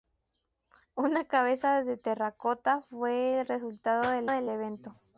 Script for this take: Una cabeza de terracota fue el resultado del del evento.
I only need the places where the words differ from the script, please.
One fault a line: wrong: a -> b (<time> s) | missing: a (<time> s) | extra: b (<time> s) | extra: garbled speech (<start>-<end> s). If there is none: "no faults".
no faults